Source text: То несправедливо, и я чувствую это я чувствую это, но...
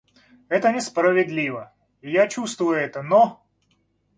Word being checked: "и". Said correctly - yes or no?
yes